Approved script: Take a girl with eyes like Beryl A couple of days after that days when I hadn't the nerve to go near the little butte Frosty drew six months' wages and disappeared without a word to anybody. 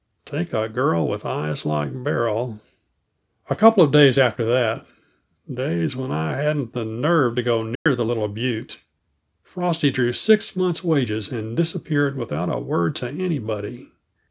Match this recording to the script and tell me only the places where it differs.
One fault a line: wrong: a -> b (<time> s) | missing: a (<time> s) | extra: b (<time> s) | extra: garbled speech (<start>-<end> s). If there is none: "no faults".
no faults